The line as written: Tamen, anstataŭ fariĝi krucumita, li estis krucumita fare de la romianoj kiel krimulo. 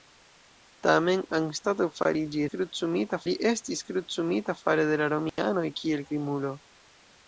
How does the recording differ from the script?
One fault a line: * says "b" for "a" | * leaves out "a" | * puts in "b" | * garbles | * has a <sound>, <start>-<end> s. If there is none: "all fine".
* has a dropout, 5.3-5.4 s